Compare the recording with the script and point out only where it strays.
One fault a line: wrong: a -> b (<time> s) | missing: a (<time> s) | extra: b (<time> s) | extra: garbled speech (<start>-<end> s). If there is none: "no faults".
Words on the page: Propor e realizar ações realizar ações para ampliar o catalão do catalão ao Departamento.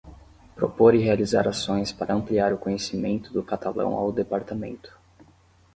missing: realizar ações (1.9 s)
wrong: catalão -> conhecimento (2.6 s)